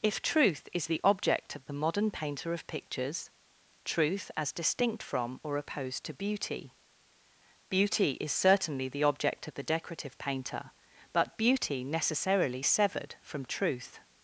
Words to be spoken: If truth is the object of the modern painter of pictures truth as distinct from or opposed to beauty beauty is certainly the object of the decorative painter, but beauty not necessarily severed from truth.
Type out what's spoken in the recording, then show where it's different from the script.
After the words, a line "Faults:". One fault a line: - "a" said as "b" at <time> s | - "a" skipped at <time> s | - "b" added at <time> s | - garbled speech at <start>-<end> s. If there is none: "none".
If truth is the object of the modern painter of pictures truth as distinct from or opposed to beauty beauty is certainly the object of the decorative painter, but beauty necessarily severed from truth.
Faults:
- "not" skipped at 11.8 s